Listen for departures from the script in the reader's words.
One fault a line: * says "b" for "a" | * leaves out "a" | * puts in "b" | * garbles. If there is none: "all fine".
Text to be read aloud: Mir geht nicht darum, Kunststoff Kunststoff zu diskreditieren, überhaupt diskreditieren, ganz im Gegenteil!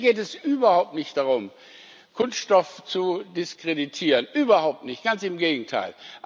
* puts in "es überhaupt"
* leaves out "Kunststoff"
* says "nicht" for "diskreditieren"